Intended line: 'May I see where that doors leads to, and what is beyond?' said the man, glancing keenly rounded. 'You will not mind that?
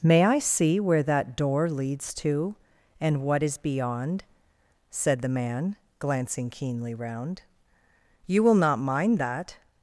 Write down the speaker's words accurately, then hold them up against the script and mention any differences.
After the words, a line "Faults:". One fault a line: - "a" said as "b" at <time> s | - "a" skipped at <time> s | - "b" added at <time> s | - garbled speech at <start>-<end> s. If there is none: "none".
'May I see where that door leads to, and what is beyond?' said the man, glancing keenly round. 'You will not mind that?
Faults:
- "doors" said as "door" at 1.4 s
- "rounded" said as "round" at 7.0 s